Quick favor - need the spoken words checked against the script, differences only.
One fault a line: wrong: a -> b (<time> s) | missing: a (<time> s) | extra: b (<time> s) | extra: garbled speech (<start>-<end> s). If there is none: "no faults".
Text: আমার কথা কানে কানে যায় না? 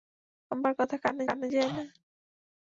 no faults